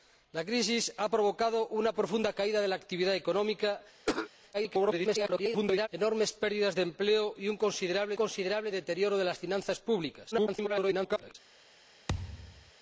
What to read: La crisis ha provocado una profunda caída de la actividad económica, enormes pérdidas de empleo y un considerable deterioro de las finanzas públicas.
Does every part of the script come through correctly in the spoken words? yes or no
no